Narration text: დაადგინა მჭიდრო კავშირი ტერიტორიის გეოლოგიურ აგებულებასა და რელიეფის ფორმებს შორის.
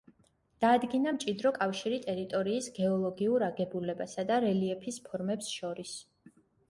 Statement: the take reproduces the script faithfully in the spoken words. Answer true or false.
true